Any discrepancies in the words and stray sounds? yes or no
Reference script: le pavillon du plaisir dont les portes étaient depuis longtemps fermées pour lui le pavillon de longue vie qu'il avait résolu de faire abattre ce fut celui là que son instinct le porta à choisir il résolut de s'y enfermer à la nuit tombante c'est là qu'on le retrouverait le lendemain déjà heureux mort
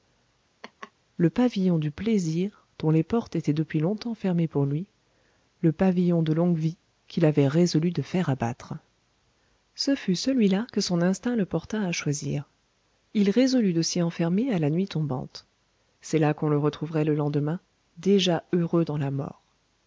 yes